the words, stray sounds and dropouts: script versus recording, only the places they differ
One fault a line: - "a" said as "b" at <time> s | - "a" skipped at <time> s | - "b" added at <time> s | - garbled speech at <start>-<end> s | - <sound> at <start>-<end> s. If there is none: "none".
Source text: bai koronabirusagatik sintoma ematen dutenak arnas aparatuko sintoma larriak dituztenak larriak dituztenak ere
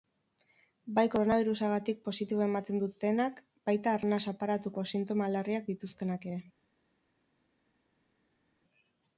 - "sintoma" said as "positibo" at 2.1 s
- "baita" added at 3.7 s
- "larriak dituztenak" skipped at 6.3 s